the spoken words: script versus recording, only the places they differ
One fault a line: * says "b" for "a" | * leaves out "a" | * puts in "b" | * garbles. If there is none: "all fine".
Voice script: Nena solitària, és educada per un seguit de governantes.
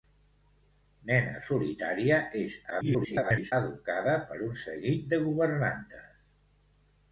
* garbles